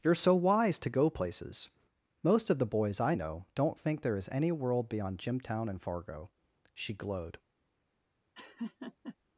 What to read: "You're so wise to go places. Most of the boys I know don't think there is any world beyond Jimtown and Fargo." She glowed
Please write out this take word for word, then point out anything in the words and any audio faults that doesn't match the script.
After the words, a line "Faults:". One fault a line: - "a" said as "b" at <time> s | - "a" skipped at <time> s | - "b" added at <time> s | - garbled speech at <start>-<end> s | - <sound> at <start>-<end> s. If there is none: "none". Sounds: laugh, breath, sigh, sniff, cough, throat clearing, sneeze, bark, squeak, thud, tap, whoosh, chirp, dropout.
"You're so wise to go places. Most of the boys I know don't think there is any world beyond Jimtown and Fargo." She glowed
Faults:
- laugh at 8.3-9.2 s